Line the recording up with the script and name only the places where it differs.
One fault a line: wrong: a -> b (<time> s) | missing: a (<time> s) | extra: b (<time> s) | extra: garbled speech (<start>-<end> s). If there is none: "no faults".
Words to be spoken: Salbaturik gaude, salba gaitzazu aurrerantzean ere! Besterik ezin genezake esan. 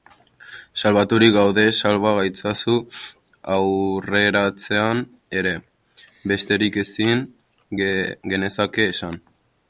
no faults